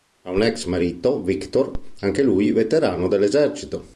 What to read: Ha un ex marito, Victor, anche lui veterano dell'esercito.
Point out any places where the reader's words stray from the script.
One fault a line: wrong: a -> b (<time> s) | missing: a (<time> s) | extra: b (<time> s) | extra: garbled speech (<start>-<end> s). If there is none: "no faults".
no faults